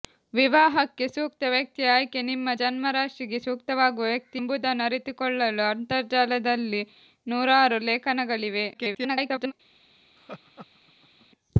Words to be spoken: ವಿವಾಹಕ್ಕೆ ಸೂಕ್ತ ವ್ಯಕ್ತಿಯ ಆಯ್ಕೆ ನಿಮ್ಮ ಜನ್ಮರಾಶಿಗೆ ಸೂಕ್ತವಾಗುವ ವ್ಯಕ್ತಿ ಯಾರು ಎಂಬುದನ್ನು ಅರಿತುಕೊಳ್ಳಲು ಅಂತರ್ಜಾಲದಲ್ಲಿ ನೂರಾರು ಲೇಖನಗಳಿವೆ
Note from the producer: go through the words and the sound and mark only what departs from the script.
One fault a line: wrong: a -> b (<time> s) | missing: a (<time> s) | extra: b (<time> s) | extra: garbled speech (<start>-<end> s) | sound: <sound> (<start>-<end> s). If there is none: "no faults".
missing: ಯಾರು (4.4 s)
extra: garbled speech (8.7-9.5 s)
sound: laugh (10.2-11.3 s)